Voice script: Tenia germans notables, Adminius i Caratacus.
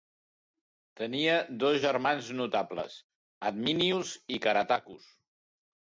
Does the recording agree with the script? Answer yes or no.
no